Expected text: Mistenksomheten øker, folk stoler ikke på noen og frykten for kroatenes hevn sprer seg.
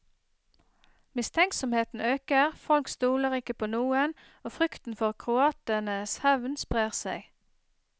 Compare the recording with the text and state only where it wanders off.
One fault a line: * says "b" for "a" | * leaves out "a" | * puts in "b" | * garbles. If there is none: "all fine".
all fine